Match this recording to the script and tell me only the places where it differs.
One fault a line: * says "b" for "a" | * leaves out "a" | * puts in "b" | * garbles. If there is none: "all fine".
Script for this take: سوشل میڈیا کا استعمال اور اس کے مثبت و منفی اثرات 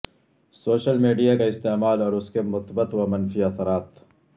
all fine